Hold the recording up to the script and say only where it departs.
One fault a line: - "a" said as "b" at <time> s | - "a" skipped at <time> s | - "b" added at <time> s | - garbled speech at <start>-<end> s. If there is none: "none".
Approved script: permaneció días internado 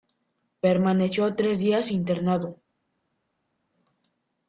- "tres" added at 1.4 s